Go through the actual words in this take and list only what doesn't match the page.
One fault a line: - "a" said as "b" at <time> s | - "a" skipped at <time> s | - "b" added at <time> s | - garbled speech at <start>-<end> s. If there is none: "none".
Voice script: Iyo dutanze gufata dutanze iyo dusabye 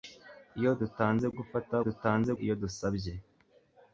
none